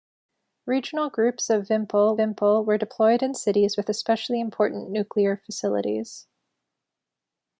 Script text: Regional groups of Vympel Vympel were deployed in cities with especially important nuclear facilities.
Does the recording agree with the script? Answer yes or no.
yes